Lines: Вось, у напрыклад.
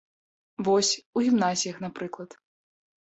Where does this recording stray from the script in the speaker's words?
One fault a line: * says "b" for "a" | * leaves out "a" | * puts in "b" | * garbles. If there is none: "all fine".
* puts in "гімназіях"